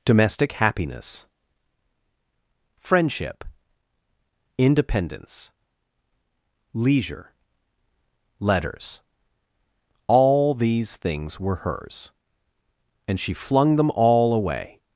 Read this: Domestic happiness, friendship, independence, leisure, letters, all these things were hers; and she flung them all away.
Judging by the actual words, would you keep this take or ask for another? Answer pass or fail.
pass